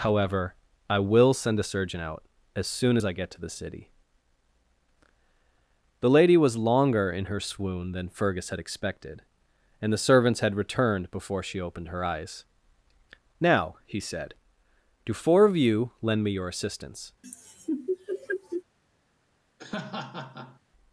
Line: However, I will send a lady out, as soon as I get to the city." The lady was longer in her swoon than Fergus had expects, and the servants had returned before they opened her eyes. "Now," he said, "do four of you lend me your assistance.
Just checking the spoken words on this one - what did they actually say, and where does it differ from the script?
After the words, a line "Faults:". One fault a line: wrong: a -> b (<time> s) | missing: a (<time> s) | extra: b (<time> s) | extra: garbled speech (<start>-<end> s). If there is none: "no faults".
However, I will send a surgeon out, as soon as I get to the city." The lady was longer in her swoon than Fergus had expected, and the servants had returned before she opened her eyes. "Now," he said, "do four of you lend me your assistance.
Faults:
wrong: lady -> surgeon (1.7 s)
wrong: expects -> expected (8.6 s)
wrong: they -> she (11.4 s)